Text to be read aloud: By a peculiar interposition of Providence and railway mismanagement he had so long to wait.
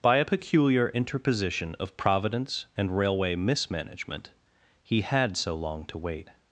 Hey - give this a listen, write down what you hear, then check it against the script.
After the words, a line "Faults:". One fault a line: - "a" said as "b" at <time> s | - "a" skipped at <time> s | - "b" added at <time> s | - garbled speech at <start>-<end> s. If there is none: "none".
By a peculiar interposition of Providence and railway mismanagement he had so long to wait.
Faults:
none